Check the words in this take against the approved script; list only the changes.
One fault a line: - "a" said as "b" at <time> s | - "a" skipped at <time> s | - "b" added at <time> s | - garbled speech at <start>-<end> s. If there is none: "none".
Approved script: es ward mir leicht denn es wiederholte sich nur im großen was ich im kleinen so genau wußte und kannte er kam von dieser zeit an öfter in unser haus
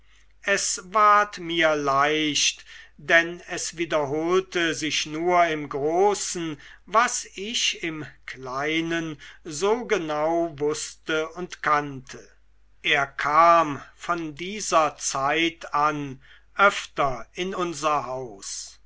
none